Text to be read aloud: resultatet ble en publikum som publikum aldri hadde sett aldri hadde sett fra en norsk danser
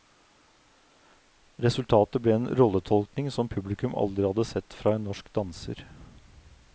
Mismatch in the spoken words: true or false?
true